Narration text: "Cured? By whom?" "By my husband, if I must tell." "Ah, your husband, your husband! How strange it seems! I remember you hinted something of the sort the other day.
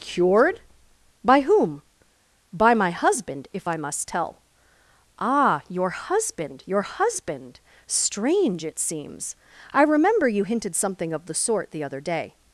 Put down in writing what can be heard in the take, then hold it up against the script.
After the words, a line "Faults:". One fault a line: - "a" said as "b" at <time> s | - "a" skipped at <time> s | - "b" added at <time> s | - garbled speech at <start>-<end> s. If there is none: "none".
"Cured? By whom?" "By my husband, if I must tell." "Ah, your husband, your husband! strange it seems! I remember you hinted something of the sort the other day.
Faults:
- "How" skipped at 7.6 s